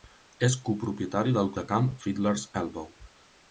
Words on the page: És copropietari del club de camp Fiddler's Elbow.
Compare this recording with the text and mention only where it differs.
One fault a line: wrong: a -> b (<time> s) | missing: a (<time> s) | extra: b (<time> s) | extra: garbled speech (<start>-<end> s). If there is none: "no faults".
missing: club (1.5 s)